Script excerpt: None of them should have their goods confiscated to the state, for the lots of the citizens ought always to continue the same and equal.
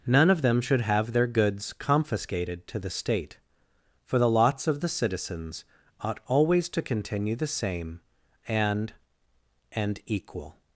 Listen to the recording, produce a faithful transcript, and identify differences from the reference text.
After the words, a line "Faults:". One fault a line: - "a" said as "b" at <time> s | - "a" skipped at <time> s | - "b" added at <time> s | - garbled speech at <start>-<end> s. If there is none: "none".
None of them should have their goods confiscated to the state, for the lots of the citizens ought always to continue the same and and equal.
Faults:
- "and" added at 9.7 s